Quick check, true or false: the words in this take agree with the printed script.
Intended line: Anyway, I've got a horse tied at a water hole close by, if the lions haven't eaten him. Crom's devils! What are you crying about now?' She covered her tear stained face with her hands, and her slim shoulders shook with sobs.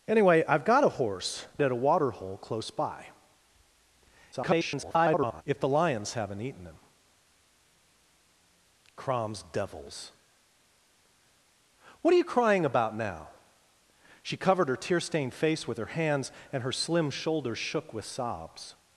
false